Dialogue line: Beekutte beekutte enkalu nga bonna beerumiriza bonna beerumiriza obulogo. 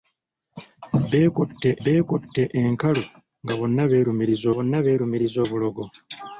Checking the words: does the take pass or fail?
pass